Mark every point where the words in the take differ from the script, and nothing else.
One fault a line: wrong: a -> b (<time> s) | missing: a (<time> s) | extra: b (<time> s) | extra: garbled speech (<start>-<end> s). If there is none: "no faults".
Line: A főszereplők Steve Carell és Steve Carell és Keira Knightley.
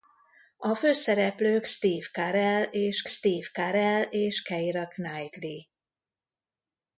no faults